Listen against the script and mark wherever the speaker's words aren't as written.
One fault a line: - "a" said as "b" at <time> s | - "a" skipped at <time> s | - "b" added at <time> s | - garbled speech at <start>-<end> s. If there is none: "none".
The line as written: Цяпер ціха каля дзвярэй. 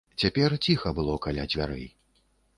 - "было" added at 1.0 s